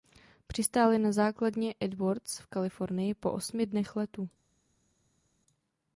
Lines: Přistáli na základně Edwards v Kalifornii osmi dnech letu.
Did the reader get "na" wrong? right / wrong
right